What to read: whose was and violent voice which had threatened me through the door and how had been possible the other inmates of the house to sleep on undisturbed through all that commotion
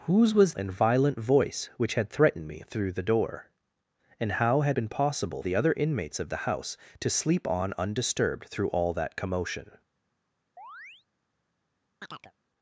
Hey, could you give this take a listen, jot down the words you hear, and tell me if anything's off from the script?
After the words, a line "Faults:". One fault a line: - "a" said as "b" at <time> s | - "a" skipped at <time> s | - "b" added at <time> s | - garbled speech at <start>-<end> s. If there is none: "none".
whose was and violent voice which had threatened me through the door and how had been possible the other inmates of the house to sleep on undisturbed through all that commotion
Faults:
none